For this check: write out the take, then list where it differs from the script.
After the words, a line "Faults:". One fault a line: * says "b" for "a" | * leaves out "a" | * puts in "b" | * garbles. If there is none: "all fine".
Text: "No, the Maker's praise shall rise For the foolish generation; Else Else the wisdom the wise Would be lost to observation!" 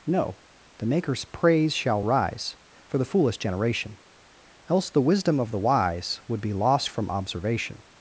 "No, the Maker's praise shall rise For the foolish generation; Else the wisdom of the wise Would be lost from observation!"
Faults:
* leaves out "Else"
* puts in "of"
* says "from" for "to"